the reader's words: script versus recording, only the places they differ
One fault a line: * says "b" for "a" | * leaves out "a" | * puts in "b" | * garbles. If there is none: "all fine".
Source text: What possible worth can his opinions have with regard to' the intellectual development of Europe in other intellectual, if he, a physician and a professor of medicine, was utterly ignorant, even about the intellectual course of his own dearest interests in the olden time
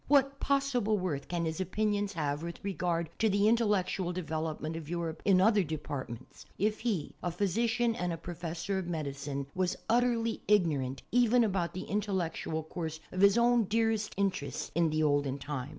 * says "departments" for "intellectual"